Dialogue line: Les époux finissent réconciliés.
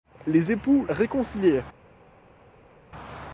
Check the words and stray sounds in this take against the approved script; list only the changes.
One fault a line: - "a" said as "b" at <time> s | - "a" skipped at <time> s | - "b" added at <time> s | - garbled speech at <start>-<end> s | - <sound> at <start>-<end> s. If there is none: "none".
- "finissent" skipped at 0.9 s